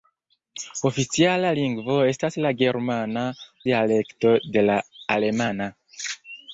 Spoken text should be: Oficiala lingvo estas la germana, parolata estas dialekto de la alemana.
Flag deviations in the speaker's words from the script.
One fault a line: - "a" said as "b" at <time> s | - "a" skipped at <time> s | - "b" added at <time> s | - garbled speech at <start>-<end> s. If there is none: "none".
- "parolata estas" skipped at 3.3 s